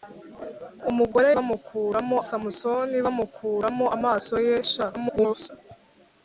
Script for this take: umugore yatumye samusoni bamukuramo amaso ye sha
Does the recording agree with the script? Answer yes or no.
no